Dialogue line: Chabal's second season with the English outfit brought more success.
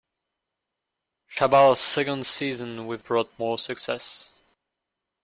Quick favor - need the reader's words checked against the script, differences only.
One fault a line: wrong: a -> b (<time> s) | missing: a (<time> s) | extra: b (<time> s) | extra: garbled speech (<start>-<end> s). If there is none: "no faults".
missing: the English outfit (3.0 s)